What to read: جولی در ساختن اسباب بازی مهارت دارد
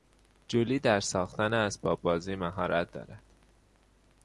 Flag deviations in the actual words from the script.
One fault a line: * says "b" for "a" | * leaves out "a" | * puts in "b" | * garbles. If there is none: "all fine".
all fine